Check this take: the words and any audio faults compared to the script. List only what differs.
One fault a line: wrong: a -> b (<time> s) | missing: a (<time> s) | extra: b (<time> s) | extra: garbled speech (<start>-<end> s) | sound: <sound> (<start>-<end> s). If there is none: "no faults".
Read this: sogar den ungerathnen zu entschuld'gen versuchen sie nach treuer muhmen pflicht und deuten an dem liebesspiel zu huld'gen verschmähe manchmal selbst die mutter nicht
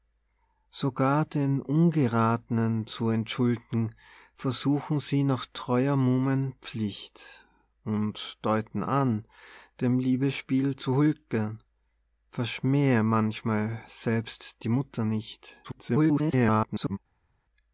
extra: garbled speech (15.6-17.0 s)